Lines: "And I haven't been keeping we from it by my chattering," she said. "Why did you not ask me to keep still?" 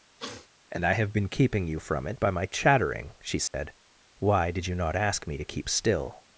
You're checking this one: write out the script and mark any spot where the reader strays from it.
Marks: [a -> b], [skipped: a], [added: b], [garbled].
"And I [haven't -> have] been keeping [we -> you] from it by my chattering," she said. "Why did you not ask me to keep still?"